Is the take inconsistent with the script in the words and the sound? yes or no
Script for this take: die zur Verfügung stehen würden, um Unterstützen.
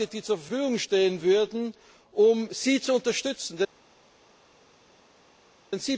yes